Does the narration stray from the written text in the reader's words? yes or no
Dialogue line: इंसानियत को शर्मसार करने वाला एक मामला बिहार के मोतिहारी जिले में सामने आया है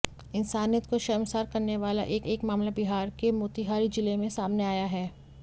yes